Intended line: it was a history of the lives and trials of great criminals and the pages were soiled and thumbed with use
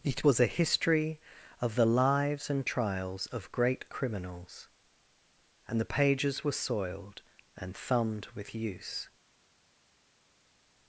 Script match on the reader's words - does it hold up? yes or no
yes